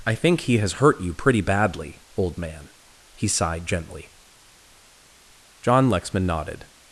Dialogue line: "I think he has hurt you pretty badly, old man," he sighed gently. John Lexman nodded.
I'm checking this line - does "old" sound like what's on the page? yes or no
yes